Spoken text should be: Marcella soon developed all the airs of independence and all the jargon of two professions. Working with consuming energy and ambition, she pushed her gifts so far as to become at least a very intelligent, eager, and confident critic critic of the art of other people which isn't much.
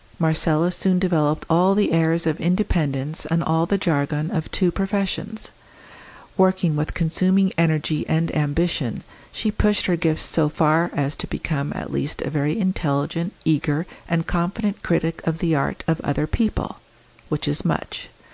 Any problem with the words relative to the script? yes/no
yes